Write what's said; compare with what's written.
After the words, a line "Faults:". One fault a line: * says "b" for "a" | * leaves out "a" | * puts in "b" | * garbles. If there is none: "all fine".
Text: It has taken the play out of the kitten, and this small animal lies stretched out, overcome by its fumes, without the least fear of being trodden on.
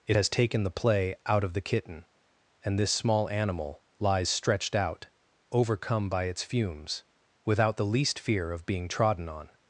It has taken the play out of the kitten, and this small animal lies stretched out, overcome by its fumes, without the least fear of being trodden on.
Faults:
all fine